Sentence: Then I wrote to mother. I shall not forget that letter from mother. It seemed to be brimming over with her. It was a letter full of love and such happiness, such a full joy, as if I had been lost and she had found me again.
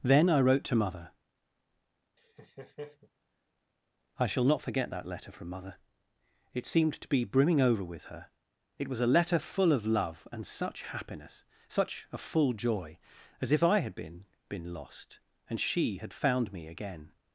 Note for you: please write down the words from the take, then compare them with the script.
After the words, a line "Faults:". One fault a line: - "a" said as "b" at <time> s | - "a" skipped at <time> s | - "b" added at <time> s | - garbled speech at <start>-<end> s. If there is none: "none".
Then I wrote to mother. I shall not forget that letter from mother. It seemed to be brimming over with her. It was a letter full of love and such happiness, such a full joy, as if I had been been lost and she had found me again.
Faults:
- "been" added at 14.5 s